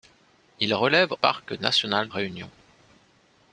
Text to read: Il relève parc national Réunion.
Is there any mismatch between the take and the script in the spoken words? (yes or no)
no